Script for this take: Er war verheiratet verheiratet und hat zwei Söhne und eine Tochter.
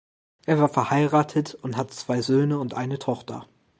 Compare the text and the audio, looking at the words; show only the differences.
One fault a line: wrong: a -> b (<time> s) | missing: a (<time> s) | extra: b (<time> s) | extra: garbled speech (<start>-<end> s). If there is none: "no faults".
missing: verheiratet (1.5 s)